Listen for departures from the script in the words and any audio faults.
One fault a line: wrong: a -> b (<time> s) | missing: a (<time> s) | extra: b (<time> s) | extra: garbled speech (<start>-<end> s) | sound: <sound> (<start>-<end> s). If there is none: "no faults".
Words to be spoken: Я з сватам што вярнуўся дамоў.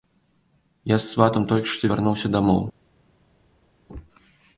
extra: толькі (1.5 s)